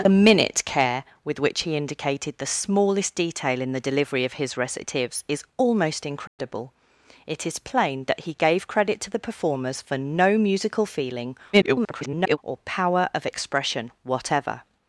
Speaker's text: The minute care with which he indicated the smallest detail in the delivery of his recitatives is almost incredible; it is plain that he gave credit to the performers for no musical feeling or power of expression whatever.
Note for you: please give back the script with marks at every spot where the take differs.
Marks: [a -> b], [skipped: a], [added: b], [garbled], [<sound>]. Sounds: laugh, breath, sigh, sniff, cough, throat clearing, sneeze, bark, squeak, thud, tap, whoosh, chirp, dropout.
The minute care with which he indicated the smallest detail in the delivery of his recitatives is almost incredible; [dropout] it is plain that he gave credit to the performers for no musical feeling [garbled] or power of expression whatever.